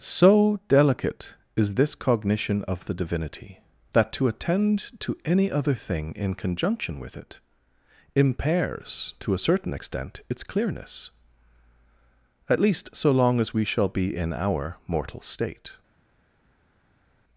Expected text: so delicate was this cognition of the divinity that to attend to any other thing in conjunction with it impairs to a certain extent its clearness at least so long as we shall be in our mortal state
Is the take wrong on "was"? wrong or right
wrong